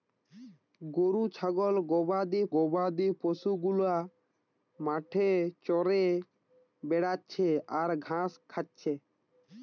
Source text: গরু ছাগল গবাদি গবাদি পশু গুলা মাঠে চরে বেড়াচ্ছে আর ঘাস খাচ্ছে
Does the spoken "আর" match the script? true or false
true